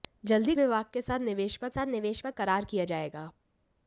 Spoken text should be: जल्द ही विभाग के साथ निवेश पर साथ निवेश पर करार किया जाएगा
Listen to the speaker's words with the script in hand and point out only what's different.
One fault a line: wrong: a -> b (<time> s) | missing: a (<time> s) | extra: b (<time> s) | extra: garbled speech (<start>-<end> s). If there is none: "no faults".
no faults